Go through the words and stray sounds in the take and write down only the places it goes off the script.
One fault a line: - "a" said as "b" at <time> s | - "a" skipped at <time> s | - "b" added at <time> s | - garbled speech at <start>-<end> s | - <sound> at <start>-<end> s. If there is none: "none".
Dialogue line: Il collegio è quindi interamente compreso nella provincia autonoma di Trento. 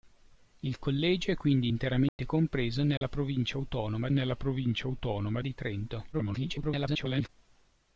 - dropout at 2.1-2.2 s
- dropout at 3.0-3.0 s
- "nella provincia autonoma" added at 4.1 s
- garbled speech at 6.1-7.3 s